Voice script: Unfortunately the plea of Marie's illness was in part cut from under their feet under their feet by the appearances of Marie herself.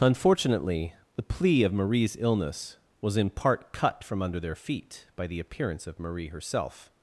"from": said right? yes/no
yes